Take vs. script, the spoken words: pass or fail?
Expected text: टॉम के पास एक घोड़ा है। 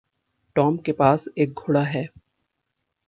pass